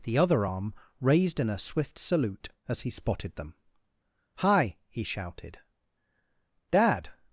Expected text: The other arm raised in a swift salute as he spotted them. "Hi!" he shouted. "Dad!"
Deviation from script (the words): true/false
false